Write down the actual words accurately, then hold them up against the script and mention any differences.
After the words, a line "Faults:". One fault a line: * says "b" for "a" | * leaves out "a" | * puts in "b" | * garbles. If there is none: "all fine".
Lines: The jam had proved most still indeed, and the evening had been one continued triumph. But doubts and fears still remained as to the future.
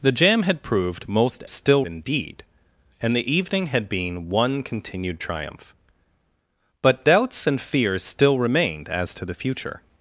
The jam had proved most still indeed, and the evening had been one continued triumph. But doubts and fears still remained as to the future.
Faults:
all fine